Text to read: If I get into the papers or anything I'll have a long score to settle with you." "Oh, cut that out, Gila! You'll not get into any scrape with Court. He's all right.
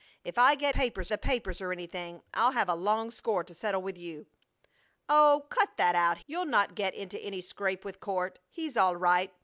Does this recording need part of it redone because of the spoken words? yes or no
yes